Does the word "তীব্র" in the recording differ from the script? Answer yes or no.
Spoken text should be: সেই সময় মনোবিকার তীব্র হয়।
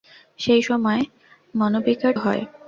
yes